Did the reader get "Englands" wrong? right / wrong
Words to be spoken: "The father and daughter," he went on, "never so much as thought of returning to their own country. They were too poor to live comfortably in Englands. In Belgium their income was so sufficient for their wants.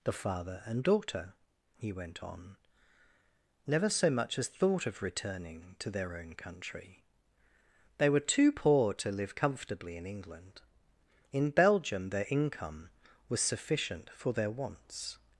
wrong